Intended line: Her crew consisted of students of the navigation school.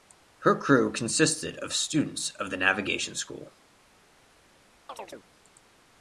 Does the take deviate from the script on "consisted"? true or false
false